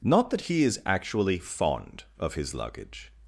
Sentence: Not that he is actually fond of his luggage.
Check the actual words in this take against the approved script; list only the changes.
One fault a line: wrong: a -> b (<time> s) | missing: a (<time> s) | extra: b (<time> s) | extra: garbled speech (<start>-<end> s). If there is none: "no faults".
no faults